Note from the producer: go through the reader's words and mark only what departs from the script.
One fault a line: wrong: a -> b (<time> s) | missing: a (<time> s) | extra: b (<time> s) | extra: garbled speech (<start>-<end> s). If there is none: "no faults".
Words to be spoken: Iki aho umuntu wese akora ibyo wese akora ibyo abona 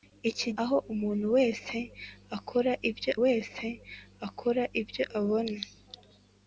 no faults